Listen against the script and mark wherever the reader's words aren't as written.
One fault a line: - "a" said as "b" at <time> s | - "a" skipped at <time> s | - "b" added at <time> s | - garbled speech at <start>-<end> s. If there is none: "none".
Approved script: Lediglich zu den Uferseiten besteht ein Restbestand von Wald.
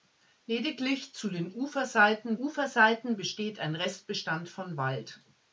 - "Uferseiten" added at 2.4 s